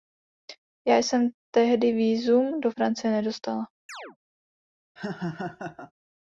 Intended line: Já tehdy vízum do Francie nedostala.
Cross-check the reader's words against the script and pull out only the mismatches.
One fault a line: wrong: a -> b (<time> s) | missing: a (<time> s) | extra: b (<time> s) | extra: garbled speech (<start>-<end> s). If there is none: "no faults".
extra: jsem (1.0 s)